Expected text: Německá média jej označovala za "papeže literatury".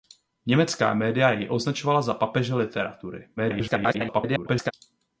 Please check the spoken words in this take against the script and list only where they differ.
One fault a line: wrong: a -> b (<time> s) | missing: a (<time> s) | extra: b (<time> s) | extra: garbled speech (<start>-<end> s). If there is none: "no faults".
extra: garbled speech (3.4-4.7 s)